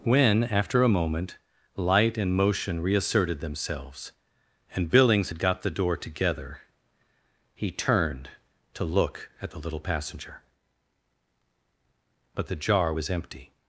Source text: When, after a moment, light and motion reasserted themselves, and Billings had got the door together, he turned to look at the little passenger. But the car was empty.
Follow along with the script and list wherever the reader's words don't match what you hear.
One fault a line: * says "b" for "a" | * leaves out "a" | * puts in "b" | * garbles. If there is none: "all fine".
* says "jar" for "car"